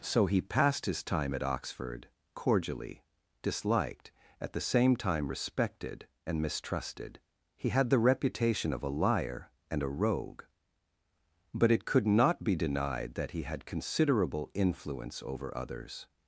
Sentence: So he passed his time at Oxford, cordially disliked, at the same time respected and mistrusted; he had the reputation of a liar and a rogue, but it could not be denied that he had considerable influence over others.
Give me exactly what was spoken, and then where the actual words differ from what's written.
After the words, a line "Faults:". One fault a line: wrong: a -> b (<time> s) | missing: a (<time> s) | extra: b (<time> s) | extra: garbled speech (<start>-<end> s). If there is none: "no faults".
So he passed his time at Oxford, cordially disliked, at the same time respected and mistrusted; he had the reputation of a liar and a rogue, but it could not be denied that he had considerable influence over others.
Faults:
no faults